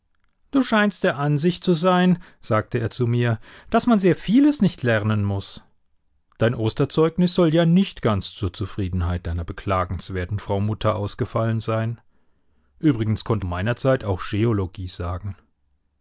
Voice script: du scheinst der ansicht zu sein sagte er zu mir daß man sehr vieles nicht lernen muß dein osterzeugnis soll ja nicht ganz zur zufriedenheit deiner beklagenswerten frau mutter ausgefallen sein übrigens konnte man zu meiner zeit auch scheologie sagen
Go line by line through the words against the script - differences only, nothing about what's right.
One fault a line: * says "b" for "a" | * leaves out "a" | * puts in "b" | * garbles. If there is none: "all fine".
* leaves out "man zu"